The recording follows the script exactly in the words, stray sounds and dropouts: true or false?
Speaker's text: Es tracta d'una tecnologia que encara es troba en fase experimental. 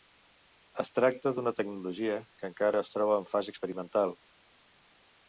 true